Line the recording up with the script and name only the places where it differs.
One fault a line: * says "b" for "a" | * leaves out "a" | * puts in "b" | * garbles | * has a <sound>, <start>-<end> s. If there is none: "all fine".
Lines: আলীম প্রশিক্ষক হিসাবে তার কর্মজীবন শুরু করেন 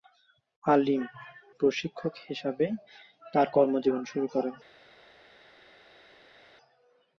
all fine